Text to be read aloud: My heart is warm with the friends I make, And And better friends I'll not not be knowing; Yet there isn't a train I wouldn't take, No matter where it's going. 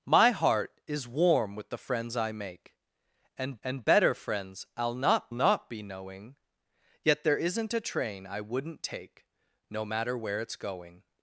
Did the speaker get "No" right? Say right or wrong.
right